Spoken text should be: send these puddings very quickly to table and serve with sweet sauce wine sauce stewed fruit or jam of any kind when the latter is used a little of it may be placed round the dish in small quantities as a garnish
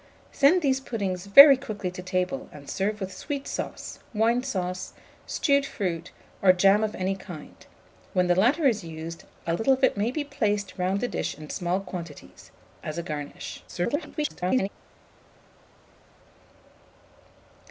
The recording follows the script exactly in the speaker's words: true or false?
false